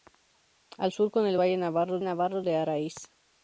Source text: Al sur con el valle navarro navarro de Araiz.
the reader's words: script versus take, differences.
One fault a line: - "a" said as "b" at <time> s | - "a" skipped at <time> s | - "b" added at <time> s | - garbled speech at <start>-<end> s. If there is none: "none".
none